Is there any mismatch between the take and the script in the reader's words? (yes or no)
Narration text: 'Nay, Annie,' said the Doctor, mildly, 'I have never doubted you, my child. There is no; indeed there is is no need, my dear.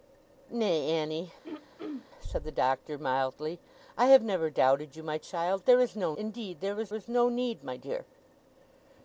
no